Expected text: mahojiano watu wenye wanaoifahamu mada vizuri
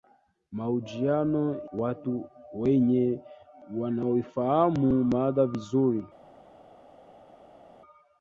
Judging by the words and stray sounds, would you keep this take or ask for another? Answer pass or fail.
pass